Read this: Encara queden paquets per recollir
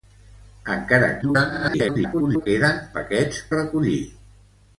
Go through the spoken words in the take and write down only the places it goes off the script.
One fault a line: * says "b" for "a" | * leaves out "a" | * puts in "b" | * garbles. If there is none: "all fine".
* garbles
* leaves out "per"